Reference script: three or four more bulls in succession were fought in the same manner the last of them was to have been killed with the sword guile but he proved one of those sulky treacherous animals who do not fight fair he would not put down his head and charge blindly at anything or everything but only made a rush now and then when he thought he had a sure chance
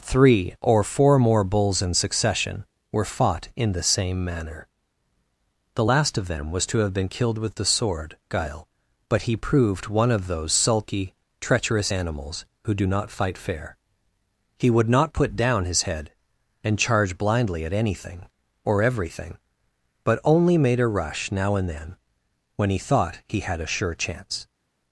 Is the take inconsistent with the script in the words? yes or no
no